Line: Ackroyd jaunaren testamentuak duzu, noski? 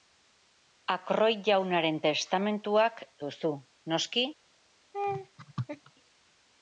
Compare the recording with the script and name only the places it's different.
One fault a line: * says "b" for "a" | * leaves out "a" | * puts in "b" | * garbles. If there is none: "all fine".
all fine